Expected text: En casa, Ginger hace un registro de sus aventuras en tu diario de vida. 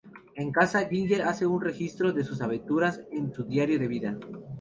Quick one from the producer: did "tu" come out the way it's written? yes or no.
no